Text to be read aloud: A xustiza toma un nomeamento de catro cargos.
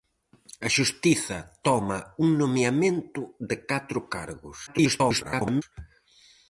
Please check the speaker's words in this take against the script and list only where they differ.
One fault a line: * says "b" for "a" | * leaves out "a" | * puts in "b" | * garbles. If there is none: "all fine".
* garbles